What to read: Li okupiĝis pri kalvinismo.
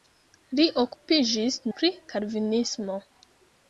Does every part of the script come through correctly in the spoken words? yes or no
yes